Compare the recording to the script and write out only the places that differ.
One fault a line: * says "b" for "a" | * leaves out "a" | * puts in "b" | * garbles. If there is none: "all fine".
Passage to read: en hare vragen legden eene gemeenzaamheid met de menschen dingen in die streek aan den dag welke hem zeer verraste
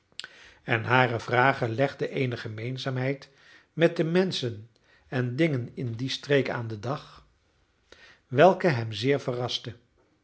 * puts in "en"